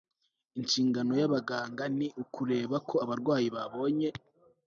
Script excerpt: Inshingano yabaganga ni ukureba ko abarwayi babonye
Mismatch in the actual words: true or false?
false